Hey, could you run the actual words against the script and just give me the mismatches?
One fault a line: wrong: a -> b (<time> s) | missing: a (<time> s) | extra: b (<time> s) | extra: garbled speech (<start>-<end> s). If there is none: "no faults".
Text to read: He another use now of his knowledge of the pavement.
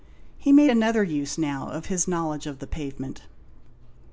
extra: made (0.5 s)